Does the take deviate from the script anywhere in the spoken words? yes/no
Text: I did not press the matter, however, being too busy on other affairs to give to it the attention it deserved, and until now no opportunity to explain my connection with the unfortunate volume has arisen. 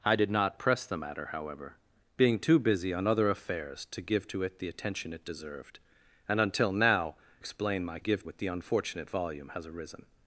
yes